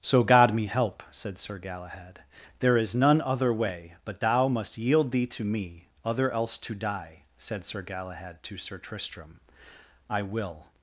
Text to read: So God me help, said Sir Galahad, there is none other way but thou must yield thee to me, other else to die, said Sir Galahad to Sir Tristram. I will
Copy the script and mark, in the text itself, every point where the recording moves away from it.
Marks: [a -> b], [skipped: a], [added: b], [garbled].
So God me help, said Sir Galahad, there is none other way but thou must yield thee to me, other else to die, said Sir Galahad to Sir Tristram. I will